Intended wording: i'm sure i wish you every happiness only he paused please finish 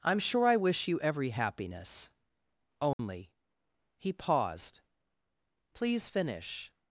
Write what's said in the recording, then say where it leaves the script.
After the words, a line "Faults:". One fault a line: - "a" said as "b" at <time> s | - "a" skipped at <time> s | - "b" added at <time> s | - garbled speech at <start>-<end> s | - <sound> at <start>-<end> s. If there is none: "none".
i'm sure i wish you every happiness only he paused please finish
Faults:
- dropout at 2.9-3.0 s